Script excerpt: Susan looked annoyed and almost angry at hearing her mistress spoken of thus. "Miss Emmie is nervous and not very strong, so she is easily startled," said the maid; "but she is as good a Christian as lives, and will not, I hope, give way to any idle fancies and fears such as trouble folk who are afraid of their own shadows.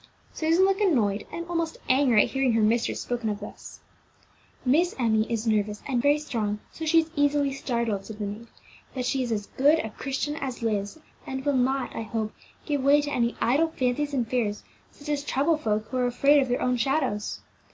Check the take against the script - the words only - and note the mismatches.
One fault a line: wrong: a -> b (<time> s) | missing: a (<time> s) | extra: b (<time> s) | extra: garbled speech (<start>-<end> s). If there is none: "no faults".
missing: not (6.0 s)